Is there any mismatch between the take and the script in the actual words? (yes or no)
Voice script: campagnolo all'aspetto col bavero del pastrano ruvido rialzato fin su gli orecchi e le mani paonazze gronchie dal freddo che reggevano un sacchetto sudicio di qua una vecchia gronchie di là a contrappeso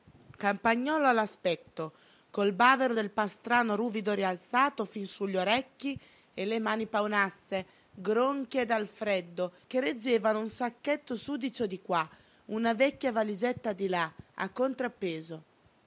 yes